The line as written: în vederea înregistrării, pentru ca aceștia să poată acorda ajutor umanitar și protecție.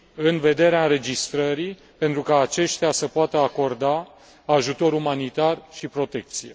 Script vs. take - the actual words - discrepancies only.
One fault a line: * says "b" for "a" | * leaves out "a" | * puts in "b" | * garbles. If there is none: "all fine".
all fine